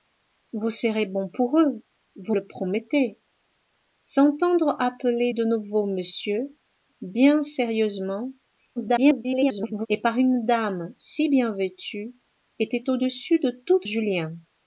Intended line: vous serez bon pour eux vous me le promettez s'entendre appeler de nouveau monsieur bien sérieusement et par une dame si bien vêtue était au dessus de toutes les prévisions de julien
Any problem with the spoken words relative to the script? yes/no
yes